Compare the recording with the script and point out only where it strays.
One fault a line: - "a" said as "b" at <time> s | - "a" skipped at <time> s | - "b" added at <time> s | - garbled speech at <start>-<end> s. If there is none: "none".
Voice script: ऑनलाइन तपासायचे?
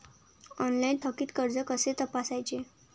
- "थकीत कर्ज कसे" added at 1.0 s